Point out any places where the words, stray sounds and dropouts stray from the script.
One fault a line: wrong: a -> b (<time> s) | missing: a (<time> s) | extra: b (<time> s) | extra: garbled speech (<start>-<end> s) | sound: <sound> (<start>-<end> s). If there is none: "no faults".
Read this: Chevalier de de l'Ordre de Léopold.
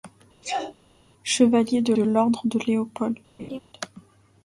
sound: sneeze (0.4-0.7 s)
sound: laugh (3.4-3.6 s)